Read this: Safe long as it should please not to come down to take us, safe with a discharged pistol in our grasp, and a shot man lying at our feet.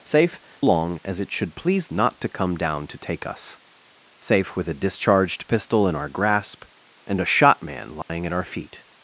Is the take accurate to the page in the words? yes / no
yes